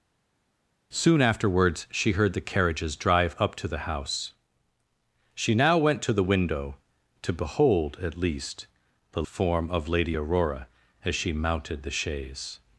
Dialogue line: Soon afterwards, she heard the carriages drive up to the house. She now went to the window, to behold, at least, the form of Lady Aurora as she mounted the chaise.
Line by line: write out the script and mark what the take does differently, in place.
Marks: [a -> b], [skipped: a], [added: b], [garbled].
Soon afterwards, she heard the carriages drive up to the house. She now went to the window, to behold, at least, the form of Lady Aurora as she mounted the chaise.